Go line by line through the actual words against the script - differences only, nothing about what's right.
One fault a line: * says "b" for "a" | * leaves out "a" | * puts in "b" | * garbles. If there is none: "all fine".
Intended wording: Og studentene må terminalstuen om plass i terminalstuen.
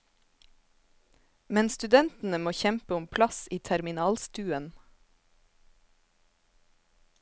* says "Men" for "Og"
* says "kjempe" for "terminalstuen"